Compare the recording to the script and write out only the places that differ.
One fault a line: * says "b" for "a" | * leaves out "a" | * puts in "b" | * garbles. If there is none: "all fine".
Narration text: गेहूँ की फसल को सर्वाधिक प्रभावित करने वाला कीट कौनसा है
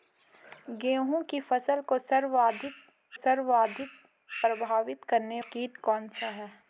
* puts in "सर्वाधिक"
* leaves out "वाला"